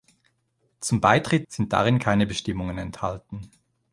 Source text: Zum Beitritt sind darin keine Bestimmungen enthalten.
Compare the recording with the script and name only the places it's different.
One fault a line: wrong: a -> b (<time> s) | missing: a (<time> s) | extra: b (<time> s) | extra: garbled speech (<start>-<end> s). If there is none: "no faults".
no faults